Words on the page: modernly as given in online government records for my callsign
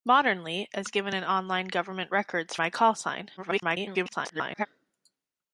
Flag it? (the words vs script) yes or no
yes